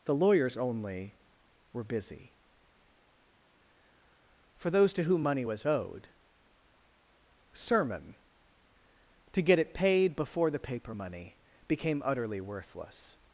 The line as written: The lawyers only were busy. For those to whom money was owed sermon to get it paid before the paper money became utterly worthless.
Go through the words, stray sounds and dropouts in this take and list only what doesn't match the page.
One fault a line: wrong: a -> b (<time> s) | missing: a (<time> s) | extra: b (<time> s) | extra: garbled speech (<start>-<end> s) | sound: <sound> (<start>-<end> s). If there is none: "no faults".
no faults